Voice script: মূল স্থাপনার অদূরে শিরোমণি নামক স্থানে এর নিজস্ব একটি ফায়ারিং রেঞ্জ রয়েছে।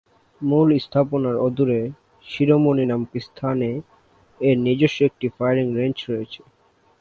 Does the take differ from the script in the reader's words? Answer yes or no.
no